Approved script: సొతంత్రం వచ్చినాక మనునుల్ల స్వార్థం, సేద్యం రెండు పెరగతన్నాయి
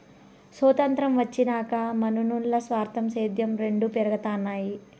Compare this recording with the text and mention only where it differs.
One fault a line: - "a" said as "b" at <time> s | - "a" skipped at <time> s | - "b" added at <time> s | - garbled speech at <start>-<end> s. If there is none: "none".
none